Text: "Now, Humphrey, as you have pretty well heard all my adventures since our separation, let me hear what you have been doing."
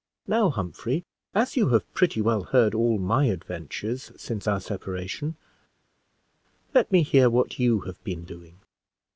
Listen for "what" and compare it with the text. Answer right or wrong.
right